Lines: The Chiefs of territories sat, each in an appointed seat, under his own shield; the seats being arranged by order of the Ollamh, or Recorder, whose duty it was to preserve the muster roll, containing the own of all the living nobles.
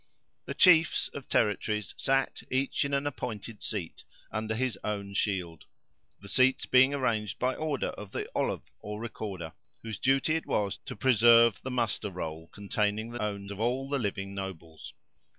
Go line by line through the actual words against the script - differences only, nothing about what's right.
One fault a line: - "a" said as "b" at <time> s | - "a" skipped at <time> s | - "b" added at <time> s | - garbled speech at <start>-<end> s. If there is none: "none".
none